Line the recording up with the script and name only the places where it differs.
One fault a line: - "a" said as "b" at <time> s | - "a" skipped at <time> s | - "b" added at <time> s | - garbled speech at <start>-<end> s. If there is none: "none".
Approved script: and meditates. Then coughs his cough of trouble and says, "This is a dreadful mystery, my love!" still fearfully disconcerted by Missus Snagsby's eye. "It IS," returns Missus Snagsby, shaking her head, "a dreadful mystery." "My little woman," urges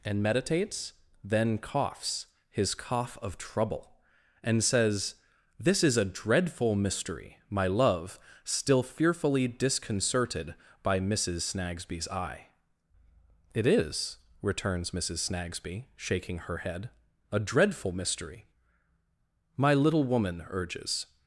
none